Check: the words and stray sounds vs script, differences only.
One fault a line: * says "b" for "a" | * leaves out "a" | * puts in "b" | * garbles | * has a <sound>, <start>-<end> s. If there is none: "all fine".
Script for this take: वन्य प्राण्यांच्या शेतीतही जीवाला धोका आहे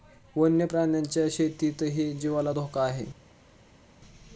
all fine